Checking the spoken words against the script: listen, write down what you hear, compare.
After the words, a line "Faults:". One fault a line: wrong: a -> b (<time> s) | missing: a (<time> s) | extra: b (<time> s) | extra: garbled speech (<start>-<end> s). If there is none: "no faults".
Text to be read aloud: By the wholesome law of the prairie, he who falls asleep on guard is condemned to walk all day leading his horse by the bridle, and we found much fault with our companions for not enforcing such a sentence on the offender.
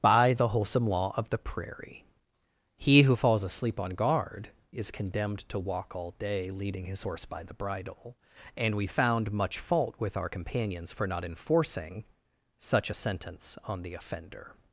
By the wholesome law of the prairie, he who falls asleep on guard is condemned to walk all day leading his horse by the bridle, and we found much fault with our companions for not enforcing such a sentence on the offender.
Faults:
no faults